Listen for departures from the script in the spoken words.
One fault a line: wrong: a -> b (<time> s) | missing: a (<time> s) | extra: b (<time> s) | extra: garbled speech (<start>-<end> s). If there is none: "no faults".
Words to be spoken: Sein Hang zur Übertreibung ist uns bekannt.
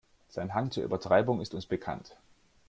no faults